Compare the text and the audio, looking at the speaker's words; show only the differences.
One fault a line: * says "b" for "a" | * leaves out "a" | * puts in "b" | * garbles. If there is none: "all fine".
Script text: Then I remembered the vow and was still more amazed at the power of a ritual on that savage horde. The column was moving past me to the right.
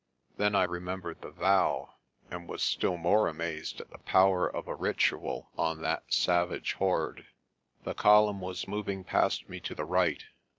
all fine